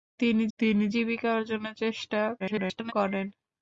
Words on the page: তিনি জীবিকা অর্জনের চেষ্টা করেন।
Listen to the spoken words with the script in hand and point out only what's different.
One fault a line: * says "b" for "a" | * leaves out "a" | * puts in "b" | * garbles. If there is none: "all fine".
* puts in "তিনি"
* garbles